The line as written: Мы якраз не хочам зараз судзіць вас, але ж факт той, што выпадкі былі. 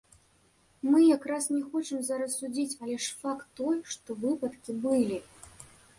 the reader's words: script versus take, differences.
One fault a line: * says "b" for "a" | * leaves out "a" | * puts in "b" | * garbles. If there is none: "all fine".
* leaves out "вас"